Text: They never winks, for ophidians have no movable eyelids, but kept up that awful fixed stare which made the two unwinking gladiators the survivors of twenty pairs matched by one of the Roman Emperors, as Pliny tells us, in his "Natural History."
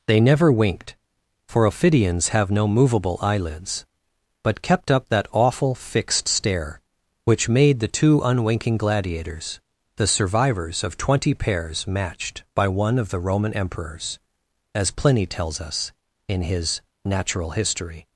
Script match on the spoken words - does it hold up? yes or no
no